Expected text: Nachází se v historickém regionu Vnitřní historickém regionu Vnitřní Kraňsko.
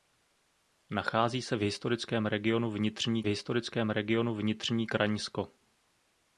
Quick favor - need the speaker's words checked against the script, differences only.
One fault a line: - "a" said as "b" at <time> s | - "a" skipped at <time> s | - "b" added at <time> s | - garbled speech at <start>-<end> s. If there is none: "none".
none